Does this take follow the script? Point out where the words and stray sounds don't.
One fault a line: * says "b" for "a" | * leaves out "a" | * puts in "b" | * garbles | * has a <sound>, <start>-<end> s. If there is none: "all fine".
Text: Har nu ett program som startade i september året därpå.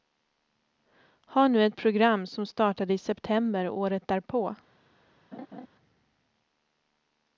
* has a laugh, 5.3-5.7 s